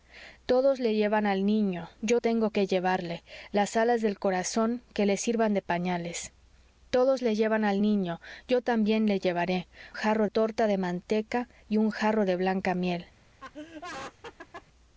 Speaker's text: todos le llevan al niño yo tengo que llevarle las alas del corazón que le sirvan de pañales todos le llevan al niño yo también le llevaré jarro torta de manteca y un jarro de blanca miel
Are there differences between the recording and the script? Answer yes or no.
no